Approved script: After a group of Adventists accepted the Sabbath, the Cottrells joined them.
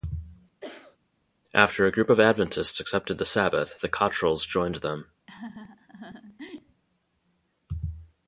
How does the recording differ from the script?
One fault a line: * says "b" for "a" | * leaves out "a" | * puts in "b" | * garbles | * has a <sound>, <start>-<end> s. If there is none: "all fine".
* has a cough, 0.6-1.0 s
* has a laugh, 5.3-6.8 s